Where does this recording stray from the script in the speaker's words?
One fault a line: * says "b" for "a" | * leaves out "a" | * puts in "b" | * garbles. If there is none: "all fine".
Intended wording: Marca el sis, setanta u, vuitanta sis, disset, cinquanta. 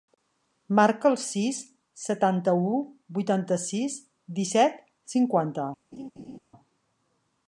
all fine